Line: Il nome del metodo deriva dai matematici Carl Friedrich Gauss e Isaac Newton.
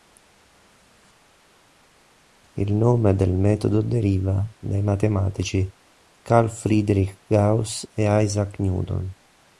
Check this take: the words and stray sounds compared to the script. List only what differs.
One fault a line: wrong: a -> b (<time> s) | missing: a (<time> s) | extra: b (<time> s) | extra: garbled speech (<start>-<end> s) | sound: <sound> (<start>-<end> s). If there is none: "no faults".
no faults